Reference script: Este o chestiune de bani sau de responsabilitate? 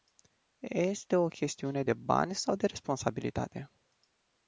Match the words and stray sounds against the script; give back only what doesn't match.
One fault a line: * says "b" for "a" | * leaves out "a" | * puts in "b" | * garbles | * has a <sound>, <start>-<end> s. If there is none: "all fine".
all fine